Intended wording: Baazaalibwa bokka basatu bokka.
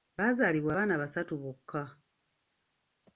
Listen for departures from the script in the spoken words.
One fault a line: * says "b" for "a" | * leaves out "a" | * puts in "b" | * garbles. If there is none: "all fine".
* says "abaana" for "bokka"